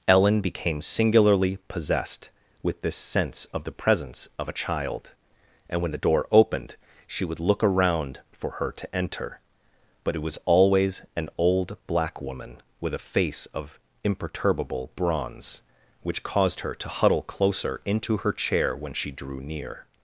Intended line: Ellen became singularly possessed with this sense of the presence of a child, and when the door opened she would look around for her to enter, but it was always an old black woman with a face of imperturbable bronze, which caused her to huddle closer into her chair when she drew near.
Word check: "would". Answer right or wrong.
right